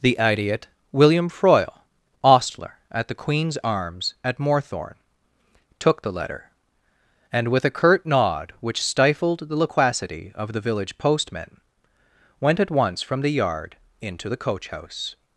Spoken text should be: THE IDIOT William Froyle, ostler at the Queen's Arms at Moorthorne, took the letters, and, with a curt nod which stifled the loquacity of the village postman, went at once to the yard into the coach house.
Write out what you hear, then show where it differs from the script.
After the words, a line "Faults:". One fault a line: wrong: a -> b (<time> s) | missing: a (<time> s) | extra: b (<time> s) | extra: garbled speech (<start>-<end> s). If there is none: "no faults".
THE IDIOT William Froyle, ostler at the Queen's Arms at Moorthorne, took the letter, and, with a curt nod which stifled the loquacity of the village postman, went at once from the yard into the coach house.
Faults:
wrong: letters -> letter (6.1 s)
wrong: to -> from (13.0 s)